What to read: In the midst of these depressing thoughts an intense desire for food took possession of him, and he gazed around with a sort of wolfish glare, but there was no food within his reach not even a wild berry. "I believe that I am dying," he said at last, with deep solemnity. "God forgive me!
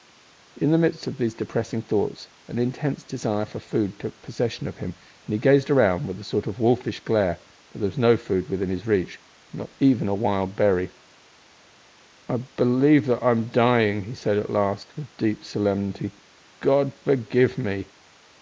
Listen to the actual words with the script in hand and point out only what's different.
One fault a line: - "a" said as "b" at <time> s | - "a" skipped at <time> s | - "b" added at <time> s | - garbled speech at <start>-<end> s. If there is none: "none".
none